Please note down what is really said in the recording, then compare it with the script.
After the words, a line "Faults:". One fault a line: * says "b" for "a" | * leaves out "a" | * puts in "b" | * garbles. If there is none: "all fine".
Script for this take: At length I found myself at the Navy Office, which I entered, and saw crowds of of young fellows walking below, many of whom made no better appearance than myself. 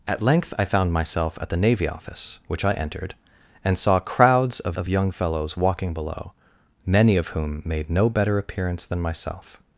At length I found myself at the Navy Office, which I entered, and saw crowds of of young fellows walking below, many of whom made no better appearance than myself.
Faults:
all fine